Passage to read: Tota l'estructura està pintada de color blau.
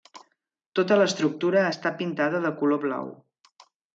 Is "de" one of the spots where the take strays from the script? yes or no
no